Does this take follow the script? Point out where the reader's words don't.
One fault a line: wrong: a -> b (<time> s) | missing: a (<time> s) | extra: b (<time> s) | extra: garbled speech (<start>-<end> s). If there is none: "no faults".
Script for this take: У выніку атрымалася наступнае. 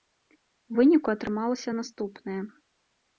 no faults